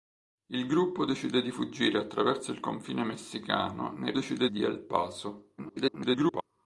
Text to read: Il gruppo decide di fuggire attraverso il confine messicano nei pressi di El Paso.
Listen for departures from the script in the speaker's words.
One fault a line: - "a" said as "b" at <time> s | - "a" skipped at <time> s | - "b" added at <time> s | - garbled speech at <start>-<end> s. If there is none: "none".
- "pressi" said as "decide" at 4.1 s
- garbled speech at 5.6-6.4 s